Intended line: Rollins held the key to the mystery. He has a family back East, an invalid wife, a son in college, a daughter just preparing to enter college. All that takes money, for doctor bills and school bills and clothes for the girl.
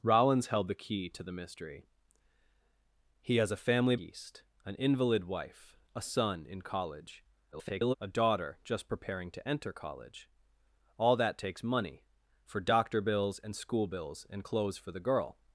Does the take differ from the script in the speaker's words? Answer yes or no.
yes